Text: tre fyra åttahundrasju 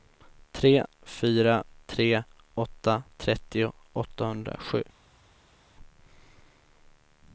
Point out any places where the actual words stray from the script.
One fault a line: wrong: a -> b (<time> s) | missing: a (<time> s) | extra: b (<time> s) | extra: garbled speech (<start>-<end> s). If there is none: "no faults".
extra: tre åtta trettio (1.9 s)